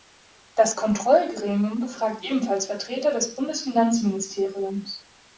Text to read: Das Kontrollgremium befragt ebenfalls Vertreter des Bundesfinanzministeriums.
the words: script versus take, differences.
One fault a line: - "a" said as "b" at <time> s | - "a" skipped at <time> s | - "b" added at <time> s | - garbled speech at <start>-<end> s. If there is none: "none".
none